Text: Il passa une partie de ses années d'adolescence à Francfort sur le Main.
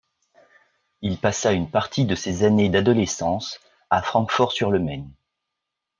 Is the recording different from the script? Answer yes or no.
no